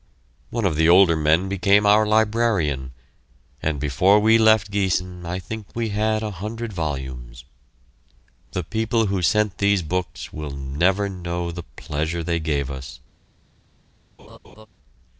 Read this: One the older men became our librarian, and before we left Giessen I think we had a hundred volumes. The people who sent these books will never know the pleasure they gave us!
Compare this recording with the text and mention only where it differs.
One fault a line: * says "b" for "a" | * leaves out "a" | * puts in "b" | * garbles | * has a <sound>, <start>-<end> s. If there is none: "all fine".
* puts in "of"
* has a laugh, 14.2-14.7 s